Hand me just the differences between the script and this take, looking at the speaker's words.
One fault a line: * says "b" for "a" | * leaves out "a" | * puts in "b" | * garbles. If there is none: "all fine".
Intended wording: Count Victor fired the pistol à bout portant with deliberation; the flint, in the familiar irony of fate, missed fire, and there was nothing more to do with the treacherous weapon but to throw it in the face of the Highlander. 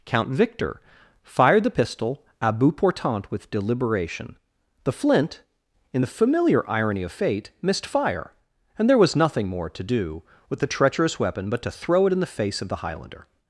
all fine